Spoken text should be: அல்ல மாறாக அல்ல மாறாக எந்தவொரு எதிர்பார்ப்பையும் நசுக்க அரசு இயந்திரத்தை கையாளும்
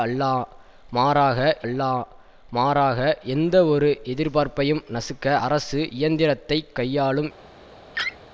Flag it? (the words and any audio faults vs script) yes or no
yes